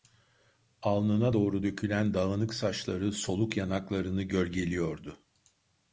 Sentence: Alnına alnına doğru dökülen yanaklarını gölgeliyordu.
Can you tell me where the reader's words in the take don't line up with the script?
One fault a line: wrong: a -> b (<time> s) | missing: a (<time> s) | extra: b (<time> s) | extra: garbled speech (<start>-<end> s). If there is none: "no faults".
missing: alnına (1.4 s)
extra: dağınık saçları soluk (2.1 s)